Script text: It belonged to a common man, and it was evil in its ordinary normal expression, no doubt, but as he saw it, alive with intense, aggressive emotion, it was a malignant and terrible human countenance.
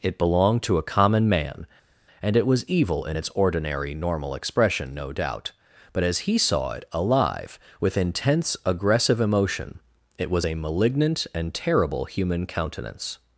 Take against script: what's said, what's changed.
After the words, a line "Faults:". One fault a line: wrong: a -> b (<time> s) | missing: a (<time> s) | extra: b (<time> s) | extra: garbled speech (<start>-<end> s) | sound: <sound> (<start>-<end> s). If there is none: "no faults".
It belonged to a common man, and it was evil in its ordinary normal expression, no doubt, but as he saw it, alive with intense, aggressive emotion, it was a malignant and terrible human countenance.
Faults:
no faults